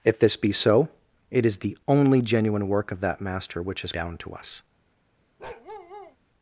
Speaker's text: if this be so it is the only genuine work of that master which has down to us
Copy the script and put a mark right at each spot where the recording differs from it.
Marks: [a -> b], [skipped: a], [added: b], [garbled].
if this be so it is the only genuine work of that master which has down to us